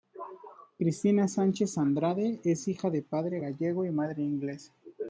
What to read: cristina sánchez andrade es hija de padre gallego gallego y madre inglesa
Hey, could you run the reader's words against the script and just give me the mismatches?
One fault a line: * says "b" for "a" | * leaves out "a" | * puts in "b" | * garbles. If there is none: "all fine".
* leaves out "gallego"